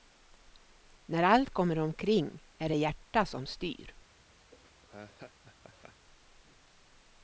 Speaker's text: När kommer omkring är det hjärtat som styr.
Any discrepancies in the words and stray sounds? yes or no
yes